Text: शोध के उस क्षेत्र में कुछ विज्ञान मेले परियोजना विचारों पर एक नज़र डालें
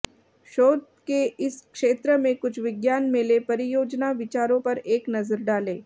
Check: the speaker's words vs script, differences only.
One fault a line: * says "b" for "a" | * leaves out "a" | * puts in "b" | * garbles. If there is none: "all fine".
* says "इस" for "उस"